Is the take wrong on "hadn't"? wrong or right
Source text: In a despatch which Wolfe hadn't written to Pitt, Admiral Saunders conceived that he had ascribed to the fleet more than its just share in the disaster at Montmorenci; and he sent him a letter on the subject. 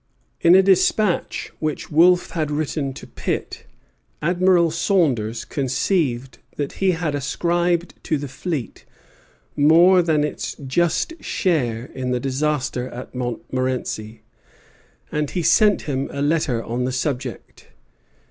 wrong